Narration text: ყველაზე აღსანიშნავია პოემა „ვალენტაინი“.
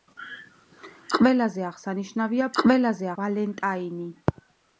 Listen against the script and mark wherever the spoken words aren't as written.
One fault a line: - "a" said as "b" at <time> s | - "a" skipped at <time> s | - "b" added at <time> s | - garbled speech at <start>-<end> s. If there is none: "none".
- "პოემა" said as "ყველაზე" at 2.6 s